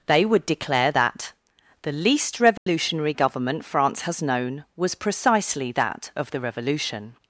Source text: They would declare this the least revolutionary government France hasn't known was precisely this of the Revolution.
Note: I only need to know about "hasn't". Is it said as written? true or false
false